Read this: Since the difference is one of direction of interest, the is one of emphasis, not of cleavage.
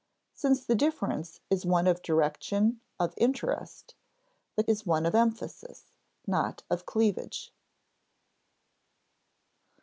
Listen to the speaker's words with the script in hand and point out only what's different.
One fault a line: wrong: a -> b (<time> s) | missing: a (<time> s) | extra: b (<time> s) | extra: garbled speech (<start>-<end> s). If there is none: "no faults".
no faults